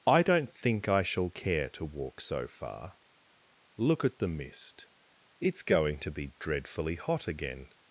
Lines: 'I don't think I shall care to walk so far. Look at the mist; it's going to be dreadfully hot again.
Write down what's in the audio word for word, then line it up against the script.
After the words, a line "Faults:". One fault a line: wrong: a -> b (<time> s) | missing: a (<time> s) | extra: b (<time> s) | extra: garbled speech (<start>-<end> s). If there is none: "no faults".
'I don't think I shall care to walk so far. Look at the mist; it's going to be dreadfully hot again.
Faults:
no faults